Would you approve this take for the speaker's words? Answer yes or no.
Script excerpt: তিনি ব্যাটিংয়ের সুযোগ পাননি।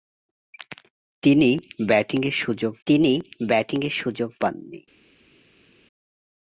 no